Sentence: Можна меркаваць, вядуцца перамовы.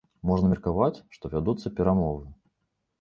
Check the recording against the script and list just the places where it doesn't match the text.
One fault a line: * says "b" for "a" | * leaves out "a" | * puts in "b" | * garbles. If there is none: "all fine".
* puts in "што"